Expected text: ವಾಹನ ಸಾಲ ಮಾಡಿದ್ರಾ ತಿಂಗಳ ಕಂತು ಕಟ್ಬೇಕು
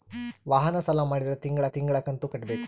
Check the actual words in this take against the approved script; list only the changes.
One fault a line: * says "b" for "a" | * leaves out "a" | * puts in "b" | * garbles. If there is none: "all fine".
* puts in "ತಿಂಗಳ"